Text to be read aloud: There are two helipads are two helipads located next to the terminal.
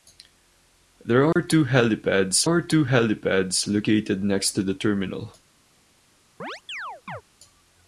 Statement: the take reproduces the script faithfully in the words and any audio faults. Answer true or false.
false